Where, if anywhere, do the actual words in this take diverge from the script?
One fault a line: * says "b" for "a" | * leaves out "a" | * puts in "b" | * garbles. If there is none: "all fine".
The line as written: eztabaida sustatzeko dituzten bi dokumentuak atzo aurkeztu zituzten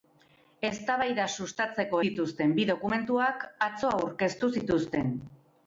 all fine